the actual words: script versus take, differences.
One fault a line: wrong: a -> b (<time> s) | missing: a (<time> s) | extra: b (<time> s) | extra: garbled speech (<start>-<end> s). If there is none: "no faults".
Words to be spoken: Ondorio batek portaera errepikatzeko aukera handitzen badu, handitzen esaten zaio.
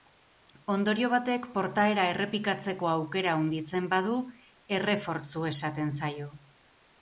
wrong: handitzen -> errefortzu (4.8 s)